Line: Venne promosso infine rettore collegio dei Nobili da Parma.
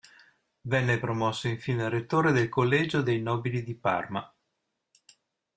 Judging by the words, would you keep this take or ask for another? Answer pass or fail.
fail